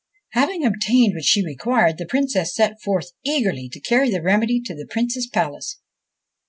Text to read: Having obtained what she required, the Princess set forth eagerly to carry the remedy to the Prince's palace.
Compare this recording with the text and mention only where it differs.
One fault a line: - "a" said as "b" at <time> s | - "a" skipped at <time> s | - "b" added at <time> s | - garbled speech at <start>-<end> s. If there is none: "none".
none